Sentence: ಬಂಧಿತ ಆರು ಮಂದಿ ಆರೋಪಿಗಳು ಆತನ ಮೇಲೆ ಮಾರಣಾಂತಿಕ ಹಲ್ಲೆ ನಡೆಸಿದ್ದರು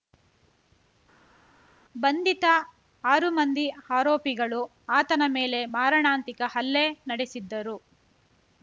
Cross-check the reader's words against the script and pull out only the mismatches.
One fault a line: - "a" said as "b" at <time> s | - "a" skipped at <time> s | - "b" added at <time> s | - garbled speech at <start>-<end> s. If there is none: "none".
none